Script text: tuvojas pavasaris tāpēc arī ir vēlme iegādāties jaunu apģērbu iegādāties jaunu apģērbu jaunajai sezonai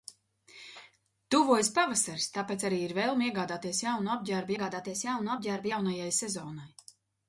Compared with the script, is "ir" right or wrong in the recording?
right